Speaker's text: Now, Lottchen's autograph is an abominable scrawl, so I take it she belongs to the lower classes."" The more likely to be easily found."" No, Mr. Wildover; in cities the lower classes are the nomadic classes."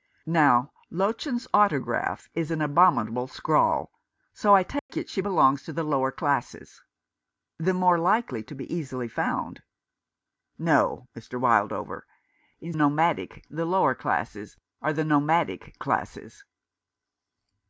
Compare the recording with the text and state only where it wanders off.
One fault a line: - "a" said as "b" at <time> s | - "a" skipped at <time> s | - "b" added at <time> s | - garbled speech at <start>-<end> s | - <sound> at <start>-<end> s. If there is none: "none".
- dropout at 4.8-4.9 s
- "cities" said as "nomadic" at 12.7 s